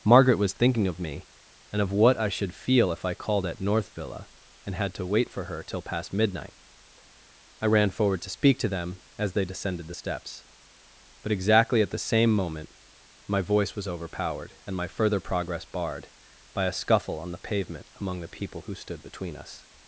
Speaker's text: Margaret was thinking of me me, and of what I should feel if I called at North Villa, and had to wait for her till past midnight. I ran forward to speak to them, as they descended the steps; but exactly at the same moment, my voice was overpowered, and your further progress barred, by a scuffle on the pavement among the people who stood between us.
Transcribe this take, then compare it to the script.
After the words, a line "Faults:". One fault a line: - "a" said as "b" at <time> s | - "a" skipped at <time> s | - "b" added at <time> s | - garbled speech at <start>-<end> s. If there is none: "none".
Margaret was thinking of me, and of what I should feel if I called at North Villa, and had to wait for her till past midnight. I ran forward to speak to them, as they descended the steps; but exactly at the same moment, my voice was overpowered, and my further progress barred, by a scuffle on the pavement among the people who stood between us.
Faults:
- "me" skipped at 1.3 s
- "your" said as "my" at 14.8 s